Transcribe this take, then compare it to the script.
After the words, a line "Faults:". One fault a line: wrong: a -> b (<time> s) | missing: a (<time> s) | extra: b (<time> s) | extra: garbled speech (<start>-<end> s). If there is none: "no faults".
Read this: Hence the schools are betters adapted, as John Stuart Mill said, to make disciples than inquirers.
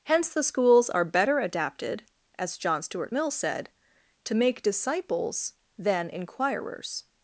Hence the schools are better adapted, as John Stuart Mill said, to make disciples than inquirers.
Faults:
wrong: betters -> better (1.1 s)